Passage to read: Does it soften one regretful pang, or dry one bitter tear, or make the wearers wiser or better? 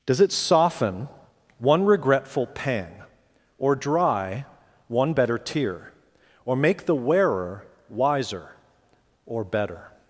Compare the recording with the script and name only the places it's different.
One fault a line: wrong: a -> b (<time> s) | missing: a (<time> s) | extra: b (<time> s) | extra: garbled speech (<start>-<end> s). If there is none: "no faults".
wrong: bitter -> better (5.1 s)
wrong: wearers -> wearer (6.9 s)